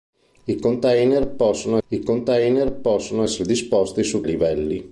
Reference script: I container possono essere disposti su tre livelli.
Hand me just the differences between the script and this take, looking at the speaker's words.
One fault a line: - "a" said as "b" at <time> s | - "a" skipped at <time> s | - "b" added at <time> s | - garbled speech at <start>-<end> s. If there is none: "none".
- "I container possono" added at 1.9 s
- "tre" skipped at 4.2 s